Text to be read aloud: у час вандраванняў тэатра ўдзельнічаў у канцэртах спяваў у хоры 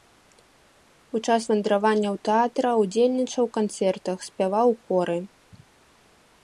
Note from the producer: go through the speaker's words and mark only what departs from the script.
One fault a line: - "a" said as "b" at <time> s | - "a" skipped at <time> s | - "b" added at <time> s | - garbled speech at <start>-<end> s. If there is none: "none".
none